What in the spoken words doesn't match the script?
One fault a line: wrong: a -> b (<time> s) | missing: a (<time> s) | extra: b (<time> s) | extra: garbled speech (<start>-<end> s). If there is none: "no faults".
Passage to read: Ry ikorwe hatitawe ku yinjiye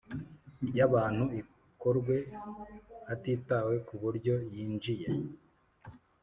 extra: abantu (0.9 s)
extra: buryo (4.0 s)